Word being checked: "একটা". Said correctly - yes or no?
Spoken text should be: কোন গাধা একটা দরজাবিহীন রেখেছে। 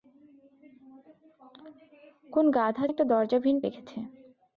yes